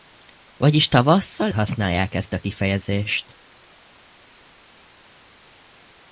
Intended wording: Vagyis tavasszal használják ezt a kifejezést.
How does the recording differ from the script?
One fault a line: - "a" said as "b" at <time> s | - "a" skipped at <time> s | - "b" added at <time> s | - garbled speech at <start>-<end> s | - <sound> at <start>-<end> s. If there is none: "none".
none